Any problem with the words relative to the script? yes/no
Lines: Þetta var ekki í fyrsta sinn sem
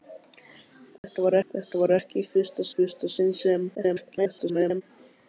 yes